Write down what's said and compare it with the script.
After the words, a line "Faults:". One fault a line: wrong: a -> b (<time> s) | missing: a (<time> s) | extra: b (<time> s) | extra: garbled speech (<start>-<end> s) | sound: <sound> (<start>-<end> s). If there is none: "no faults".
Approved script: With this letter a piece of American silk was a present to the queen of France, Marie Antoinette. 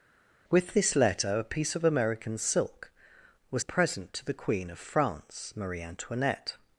With this letter a piece of American silk was a present to the queen of France, Marie Antoinette.
Faults:
no faults